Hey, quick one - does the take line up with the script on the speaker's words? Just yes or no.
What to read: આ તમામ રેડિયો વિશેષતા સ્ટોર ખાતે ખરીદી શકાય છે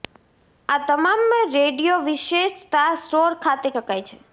no